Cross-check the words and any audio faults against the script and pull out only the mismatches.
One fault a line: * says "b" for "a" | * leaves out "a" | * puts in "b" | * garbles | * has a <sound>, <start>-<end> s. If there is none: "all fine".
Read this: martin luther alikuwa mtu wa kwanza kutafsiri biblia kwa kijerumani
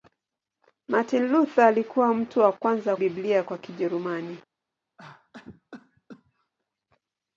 * leaves out "kutafsiri"
* has a cough, 5.0-6.5 s